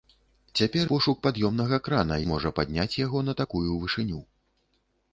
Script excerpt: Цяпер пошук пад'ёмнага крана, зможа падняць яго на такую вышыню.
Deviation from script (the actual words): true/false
false